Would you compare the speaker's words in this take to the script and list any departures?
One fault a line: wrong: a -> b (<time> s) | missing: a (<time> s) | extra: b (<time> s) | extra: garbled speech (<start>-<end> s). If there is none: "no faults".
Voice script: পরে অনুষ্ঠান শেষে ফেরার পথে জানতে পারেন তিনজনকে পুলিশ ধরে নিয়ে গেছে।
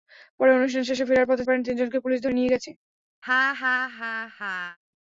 missing: জানতে (1.4 s)